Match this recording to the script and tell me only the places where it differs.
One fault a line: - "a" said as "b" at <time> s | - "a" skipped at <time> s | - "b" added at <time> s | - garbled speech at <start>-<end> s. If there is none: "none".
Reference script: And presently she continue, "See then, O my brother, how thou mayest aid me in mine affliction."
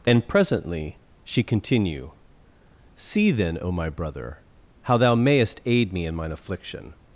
none